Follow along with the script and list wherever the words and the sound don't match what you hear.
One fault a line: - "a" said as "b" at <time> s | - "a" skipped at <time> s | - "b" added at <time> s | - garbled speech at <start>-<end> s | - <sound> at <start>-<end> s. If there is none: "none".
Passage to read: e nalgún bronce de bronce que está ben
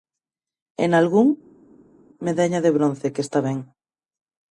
- "bronce" said as "medalla" at 2.3 s